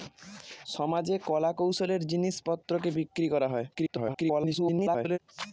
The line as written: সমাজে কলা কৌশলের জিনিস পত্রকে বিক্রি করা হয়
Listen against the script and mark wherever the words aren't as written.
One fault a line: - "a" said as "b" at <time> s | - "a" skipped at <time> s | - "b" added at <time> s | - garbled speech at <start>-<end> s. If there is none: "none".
- garbled speech at 3.7-5.2 s